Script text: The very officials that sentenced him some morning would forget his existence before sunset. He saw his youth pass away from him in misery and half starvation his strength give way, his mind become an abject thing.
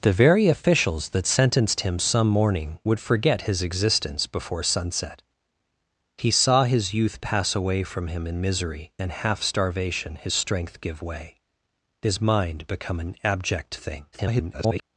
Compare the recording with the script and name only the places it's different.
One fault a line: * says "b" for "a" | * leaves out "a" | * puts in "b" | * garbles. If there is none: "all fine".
* garbles